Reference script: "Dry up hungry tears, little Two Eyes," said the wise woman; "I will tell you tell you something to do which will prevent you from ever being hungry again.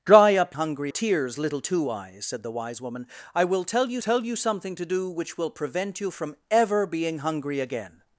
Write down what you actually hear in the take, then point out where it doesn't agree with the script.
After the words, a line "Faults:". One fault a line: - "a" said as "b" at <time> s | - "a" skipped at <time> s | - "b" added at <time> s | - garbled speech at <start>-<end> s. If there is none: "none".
"Dry up hungry tears, little Two Eyes," said the wise woman; "I will tell you tell you something to do which will prevent you from ever being hungry again.
Faults:
none